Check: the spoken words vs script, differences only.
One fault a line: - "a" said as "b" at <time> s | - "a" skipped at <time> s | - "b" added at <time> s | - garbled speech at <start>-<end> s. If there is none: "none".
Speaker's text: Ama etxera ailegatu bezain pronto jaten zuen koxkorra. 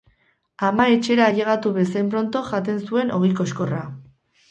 - "ogi" added at 3.2 s